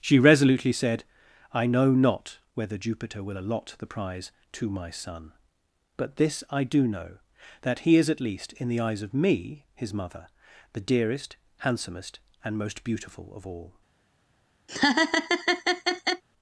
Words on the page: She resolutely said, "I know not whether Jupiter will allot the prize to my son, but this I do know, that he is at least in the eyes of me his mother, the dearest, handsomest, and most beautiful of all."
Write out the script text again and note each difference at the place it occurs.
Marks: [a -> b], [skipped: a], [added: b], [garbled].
She resolutely said, "I know not whether Jupiter will allot the prize to my son, but this I do know, that he is at least in the eyes of me his mother, the dearest, handsomest, and most beautiful of all."